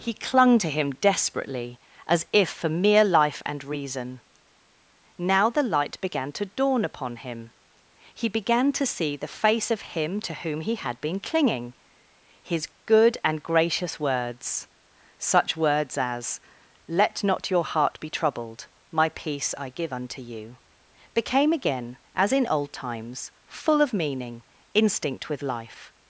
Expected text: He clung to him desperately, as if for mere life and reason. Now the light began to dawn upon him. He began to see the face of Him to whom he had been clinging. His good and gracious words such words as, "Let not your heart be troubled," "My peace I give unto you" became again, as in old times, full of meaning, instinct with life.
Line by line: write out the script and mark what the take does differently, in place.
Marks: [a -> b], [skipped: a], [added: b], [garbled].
He clung to him desperately, as if for mere life and reason. Now the light began to dawn upon him. He began to see the face of Him to whom he had been clinging. His good and gracious words such words as, "Let not your heart be troubled," "My peace I give unto you" became again, as in old times, full of meaning, instinct with life.